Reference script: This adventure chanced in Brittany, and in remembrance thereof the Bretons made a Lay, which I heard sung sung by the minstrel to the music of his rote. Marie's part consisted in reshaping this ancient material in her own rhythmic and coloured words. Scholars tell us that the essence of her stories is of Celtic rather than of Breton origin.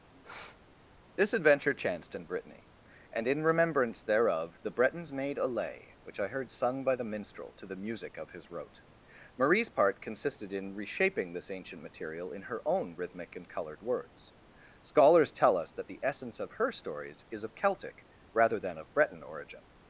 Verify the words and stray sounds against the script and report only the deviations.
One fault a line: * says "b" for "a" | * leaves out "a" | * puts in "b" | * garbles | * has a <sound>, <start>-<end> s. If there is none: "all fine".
* has a sniff, 0.1-0.6 s
* leaves out "sung"